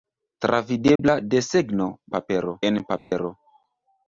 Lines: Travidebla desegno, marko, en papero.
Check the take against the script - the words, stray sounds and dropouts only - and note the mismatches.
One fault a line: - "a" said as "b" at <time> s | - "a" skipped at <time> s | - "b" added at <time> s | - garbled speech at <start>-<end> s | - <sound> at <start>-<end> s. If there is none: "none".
- dropout at 1.0-1.0 s
- "marko" said as "papero" at 2.2 s
- dropout at 3.0-3.1 s